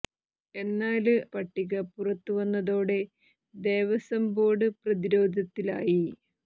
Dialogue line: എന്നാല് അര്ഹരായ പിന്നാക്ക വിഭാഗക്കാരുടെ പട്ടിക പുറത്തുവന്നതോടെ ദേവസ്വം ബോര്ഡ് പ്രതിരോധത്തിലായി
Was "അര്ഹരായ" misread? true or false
true